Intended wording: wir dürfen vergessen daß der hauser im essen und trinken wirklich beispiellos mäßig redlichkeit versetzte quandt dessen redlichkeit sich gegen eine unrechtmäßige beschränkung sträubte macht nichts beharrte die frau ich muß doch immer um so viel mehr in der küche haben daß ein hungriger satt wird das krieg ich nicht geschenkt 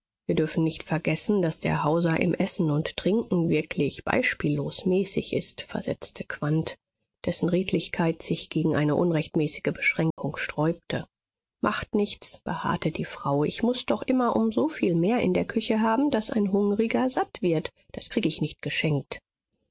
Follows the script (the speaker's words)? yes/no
no